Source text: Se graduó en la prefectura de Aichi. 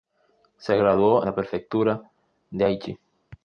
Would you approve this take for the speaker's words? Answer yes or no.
no